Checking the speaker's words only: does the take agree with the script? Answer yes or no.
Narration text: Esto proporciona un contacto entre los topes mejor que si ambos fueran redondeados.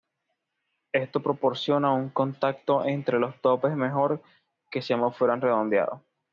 yes